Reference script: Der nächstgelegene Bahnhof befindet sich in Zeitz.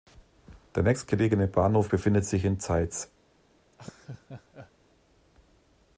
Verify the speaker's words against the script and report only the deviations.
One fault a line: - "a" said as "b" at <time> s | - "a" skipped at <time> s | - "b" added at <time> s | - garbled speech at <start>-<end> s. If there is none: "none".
none